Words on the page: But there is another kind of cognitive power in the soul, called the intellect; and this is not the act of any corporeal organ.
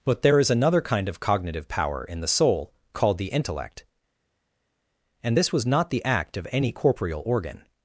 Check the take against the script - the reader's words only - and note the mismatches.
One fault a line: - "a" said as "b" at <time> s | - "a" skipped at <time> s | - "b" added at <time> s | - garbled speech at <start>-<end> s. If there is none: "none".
- "is" said as "was" at 5.5 s